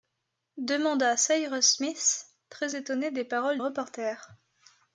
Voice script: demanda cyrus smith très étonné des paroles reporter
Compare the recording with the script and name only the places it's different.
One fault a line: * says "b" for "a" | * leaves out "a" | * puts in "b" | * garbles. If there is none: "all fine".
all fine